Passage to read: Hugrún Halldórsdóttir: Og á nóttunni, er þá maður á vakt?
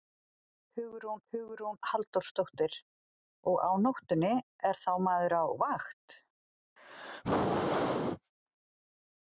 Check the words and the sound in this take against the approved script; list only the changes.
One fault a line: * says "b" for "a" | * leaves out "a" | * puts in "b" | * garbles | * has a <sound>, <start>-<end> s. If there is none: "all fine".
* puts in "hugrún"
* has a sneeze, 6.8-8.3 s